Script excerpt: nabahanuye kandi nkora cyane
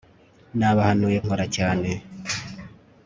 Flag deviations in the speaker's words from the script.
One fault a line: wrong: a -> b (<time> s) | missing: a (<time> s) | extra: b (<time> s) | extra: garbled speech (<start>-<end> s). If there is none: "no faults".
missing: kandi (1.2 s)